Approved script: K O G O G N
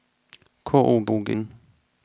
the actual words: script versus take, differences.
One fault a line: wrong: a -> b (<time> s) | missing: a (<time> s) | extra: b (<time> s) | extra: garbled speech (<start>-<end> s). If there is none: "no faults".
no faults